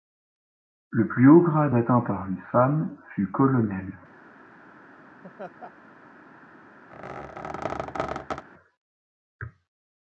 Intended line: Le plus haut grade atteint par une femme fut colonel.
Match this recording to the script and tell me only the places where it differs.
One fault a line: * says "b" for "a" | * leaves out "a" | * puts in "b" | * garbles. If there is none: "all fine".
all fine